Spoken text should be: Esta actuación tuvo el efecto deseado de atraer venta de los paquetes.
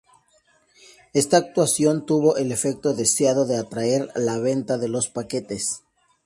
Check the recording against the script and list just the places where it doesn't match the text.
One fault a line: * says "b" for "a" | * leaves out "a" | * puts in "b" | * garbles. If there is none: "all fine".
* puts in "la"